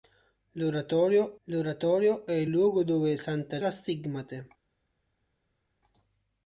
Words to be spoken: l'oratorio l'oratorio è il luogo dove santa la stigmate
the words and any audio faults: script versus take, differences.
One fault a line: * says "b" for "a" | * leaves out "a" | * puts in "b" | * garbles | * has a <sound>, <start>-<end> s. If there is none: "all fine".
all fine